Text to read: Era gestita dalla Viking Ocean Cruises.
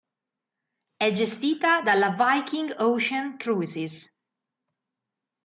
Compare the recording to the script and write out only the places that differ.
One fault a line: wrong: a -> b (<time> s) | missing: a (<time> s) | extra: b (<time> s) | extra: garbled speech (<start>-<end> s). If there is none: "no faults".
wrong: Era -> È (1.0 s)